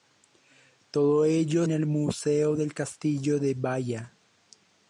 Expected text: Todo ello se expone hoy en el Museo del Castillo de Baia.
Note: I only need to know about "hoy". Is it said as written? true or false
false